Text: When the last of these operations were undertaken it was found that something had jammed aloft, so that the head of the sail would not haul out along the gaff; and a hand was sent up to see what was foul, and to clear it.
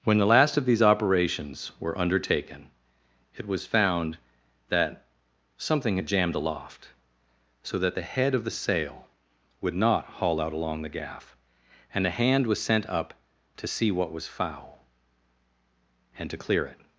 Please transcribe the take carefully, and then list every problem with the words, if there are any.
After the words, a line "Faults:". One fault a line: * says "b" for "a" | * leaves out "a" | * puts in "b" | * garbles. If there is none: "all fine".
When the last of these operations were undertaken it was found that something had jammed aloft, so that the head of the sail would not haul out along the gaff; and a hand was sent up to see what was foul, and to clear it.
Faults:
all fine